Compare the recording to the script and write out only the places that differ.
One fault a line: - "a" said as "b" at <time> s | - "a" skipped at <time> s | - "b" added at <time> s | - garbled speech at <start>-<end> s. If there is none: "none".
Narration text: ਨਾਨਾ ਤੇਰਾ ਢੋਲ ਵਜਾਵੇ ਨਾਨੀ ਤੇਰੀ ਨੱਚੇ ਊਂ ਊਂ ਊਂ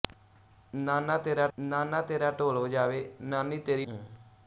- "ਨਾਨਾ ਤੇਰਾ" added at 1.6 s
- "ਨੱਚੇ ਊਂ ਊਂ" skipped at 3.9 s